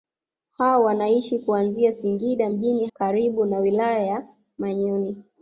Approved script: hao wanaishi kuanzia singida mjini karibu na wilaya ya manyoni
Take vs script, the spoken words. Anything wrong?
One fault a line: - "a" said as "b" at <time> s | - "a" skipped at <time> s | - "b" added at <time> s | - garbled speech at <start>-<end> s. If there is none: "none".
none